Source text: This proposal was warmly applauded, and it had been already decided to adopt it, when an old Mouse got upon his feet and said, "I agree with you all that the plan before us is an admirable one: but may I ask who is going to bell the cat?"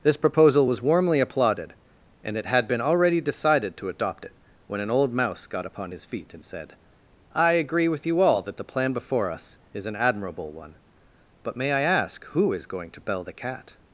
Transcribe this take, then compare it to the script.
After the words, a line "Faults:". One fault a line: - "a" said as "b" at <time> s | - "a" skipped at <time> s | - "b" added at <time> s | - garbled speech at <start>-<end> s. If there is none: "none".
This proposal was warmly applauded, and it had been already decided to adopt it, when an old Mouse got upon his feet and said, "I agree with you all that the plan before us is an admirable one: but may I ask who is going to bell the cat?"
Faults:
none